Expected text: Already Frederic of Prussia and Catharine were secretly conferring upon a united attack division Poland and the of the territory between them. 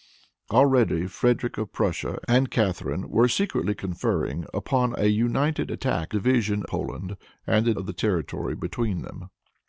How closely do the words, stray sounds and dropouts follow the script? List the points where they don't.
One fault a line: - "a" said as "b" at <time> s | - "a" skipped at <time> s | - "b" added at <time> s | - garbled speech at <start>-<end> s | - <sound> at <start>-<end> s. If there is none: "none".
none